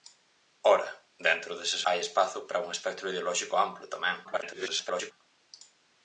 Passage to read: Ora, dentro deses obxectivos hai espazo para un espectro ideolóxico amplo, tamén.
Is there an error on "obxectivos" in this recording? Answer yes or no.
yes